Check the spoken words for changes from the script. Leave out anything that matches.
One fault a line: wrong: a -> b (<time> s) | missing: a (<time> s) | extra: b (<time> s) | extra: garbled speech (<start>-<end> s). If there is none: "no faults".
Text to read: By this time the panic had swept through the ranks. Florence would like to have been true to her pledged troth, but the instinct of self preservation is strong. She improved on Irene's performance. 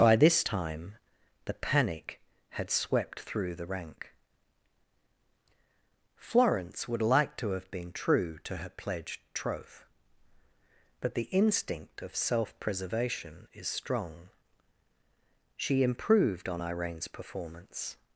wrong: ranks -> rank (3.7 s)